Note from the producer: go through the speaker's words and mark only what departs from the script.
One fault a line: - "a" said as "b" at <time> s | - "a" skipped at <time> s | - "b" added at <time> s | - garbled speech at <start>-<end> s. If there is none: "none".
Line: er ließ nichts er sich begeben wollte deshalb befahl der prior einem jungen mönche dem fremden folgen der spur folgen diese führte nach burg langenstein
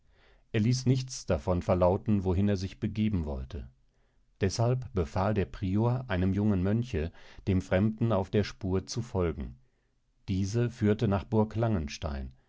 - "davon verlauten wohin" added at 1.3 s
- "folgen" said as "auf" at 8.1 s
- "zu" added at 8.9 s